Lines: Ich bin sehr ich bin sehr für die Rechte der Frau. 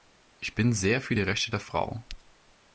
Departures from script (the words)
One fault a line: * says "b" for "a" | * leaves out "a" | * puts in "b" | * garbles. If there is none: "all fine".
* leaves out "ich bin sehr"